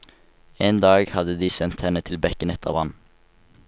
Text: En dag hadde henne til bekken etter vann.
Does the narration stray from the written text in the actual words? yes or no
yes